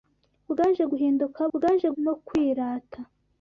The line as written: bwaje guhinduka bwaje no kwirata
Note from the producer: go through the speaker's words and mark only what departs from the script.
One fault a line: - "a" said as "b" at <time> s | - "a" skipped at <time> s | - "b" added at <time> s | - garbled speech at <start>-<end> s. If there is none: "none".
none